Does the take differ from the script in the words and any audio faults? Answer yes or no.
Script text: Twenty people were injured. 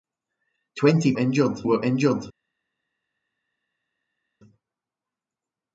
yes